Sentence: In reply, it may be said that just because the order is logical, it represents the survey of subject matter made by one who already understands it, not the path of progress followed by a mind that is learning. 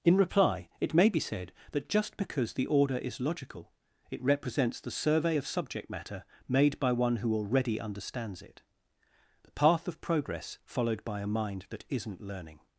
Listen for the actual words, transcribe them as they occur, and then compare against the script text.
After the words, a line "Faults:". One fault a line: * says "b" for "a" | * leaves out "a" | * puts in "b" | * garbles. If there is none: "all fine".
In reply, it may be said that just because the order is logical, it represents the survey of subject matter made by one who already understands it, the path of progress followed by a mind that isn't learning.
Faults:
* leaves out "not"
* says "isn't" for "is"